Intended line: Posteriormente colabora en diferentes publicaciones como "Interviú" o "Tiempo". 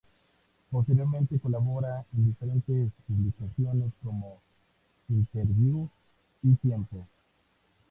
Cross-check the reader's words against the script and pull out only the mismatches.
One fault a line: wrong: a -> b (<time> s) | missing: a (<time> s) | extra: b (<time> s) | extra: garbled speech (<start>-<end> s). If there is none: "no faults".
wrong: o -> y (6.4 s)